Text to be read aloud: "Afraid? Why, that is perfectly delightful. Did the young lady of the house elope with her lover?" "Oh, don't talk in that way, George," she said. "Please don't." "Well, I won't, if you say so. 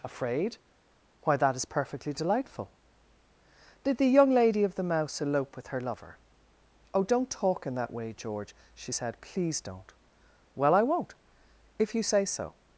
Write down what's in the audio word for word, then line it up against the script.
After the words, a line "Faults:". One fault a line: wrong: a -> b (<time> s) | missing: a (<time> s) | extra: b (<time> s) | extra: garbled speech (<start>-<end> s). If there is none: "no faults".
"Afraid? Why, that is perfectly delightful. Did the young lady of the mouse elope with her lover?" "Oh, don't talk in that way, George," she said. "Please don't." "Well, I won't, if you say so.
Faults:
wrong: house -> mouse (4.8 s)